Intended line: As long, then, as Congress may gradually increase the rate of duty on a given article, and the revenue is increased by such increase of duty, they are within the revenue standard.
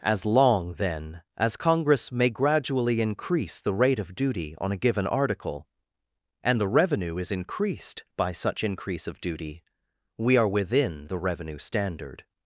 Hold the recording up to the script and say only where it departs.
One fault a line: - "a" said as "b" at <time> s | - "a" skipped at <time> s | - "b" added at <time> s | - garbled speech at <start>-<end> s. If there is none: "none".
- "they" said as "we" at 10.2 s